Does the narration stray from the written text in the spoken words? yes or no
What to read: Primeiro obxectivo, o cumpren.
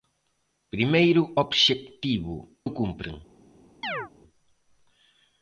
no